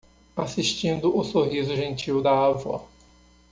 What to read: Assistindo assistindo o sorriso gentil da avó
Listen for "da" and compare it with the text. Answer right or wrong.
right